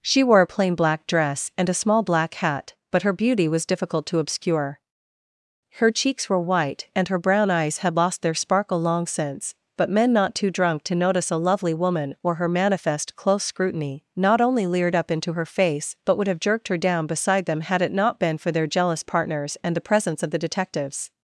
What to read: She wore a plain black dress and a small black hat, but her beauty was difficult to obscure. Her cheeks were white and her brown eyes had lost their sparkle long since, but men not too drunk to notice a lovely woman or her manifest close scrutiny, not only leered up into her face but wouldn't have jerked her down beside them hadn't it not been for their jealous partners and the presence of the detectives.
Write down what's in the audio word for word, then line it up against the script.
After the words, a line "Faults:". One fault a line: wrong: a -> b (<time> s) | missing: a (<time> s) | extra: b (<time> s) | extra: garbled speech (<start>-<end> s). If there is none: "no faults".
She wore a plain black dress and a small black hat, but her beauty was difficult to obscure. Her cheeks were white and her brown eyes had lost their sparkle long since, but men not too drunk to notice a lovely woman or her manifest close scrutiny, not only leered up into her face but would have jerked her down beside them had it not been for their jealous partners and the presence of the detectives.
Faults:
wrong: wouldn't -> would (16.2 s)
wrong: hadn't -> had (17.6 s)